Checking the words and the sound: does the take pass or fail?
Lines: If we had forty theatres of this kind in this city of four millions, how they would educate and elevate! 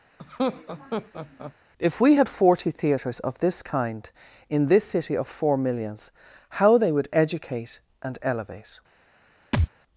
fail